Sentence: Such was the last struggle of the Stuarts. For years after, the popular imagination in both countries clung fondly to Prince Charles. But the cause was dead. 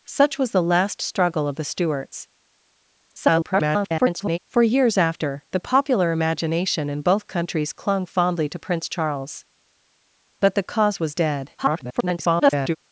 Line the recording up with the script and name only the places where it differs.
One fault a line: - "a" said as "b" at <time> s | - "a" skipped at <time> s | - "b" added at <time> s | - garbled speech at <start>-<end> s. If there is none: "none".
- garbled speech at 3.1-4.4 s
- garbled speech at 11.6-12.8 s